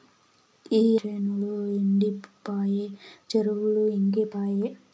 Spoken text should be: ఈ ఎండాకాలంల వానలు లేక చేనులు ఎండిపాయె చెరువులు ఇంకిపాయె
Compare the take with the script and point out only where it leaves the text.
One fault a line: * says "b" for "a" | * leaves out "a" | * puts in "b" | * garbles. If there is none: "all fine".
* leaves out "ఎండాకాలంల వానలు లేక"